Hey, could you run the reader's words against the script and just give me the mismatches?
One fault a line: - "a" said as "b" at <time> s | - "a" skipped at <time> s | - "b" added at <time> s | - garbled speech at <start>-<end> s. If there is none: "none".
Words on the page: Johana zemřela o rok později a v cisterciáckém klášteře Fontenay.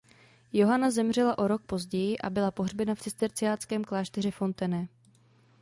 - "byla pohřbena" added at 2.3 s